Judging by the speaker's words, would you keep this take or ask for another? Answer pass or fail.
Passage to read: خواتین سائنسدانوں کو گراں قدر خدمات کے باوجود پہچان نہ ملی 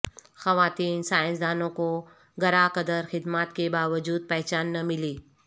pass